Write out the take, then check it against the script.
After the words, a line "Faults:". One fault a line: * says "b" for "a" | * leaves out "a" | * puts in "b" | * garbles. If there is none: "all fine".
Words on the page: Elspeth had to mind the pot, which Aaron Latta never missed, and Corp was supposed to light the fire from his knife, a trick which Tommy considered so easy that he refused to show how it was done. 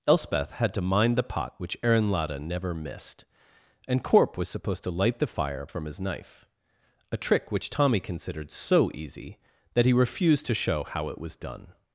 Elspeth had to mind the pot, which Aaron Latta never missed, and Corp was supposed to light the fire from his knife, a trick which Tommy considered so easy that he refused to show how it was done.
Faults:
all fine